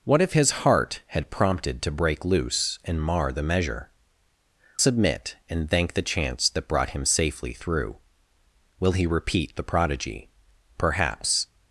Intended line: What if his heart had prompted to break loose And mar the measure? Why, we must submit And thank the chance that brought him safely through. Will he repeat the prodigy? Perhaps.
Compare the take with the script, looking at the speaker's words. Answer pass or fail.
fail